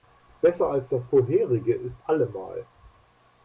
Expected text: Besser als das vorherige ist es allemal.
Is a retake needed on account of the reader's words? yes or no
yes